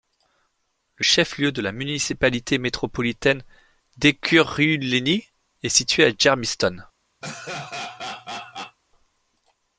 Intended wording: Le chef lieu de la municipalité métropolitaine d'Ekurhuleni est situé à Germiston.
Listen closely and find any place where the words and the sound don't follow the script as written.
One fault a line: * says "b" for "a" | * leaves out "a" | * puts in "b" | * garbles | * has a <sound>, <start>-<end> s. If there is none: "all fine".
* has a laugh, 7.2-8.8 s